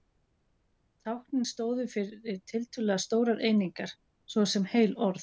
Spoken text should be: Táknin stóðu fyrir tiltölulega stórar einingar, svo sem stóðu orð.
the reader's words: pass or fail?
fail